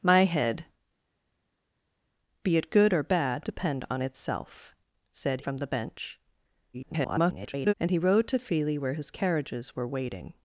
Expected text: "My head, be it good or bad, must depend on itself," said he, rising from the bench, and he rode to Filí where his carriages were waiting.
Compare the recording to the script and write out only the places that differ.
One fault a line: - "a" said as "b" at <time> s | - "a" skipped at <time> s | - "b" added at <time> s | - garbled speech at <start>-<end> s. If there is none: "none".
- "must" skipped at 3.5 s
- "he rising" skipped at 5.4 s
- garbled speech at 6.7-7.7 s